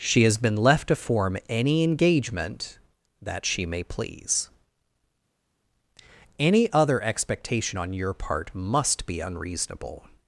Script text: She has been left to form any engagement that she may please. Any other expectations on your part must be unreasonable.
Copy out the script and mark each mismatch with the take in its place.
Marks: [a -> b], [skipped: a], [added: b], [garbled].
She has been left to form any engagement that she may please. Any other [expectations -> expectation] on your part must be unreasonable.